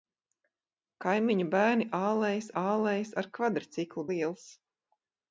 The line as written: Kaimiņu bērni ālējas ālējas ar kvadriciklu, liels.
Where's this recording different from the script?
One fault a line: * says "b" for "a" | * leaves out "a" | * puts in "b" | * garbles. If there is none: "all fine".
all fine